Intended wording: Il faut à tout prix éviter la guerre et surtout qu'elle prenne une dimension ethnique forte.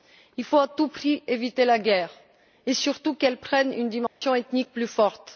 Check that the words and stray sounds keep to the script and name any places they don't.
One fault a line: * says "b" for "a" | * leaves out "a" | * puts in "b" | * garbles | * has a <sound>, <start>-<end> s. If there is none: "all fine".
* has a dropout, 4.1-4.2 s
* puts in "plus"